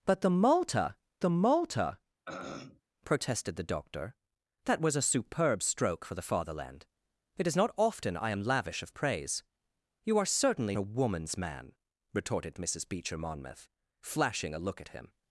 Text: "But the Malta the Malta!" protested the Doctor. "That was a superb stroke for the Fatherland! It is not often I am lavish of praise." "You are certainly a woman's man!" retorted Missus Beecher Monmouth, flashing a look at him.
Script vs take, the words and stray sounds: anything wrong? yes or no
yes